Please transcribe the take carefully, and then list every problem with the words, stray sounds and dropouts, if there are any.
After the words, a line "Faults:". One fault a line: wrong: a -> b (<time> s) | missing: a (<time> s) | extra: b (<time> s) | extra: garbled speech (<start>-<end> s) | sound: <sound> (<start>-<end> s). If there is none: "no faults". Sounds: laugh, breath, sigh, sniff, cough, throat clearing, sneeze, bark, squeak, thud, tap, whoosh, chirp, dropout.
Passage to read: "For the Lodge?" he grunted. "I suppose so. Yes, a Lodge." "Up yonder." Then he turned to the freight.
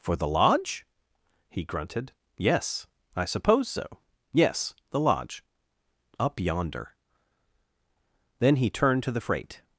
"For the Lodge?" he grunted. "Yes I suppose so. Yes, the Lodge." "Up yonder." Then he turned to the freight.
Faults:
extra: Yes (2.4 s)
wrong: a -> the (4.9 s)